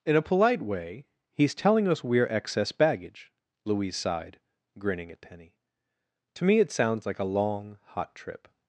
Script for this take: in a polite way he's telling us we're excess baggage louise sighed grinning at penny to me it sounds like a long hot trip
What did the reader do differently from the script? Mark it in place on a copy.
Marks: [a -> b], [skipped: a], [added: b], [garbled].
in a polite way he's telling us we're excess baggage louise sighed grinning at penny to me it sounds like a long hot trip